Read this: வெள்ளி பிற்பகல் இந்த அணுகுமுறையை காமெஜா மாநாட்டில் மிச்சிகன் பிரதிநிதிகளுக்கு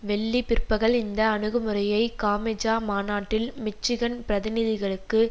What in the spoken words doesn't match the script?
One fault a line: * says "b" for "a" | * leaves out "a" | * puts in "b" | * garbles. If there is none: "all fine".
all fine